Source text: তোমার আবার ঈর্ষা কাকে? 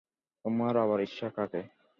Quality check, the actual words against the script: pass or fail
pass